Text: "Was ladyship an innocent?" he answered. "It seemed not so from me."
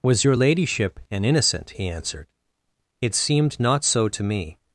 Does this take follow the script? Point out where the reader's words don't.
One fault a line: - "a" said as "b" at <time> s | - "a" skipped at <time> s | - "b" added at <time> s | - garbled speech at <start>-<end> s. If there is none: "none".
- "your" added at 0.2 s
- "from" said as "to" at 4.1 s